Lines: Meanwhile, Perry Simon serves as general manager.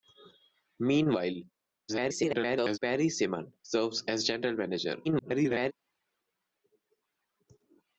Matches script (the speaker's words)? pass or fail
fail